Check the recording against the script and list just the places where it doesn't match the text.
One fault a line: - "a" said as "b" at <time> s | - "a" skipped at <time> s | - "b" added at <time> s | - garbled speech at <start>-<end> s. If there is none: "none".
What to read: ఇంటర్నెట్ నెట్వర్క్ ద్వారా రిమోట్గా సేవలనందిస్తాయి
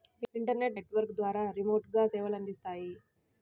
none